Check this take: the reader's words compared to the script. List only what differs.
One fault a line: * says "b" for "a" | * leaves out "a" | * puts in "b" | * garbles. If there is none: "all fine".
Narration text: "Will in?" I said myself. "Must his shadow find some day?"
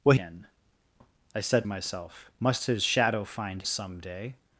all fine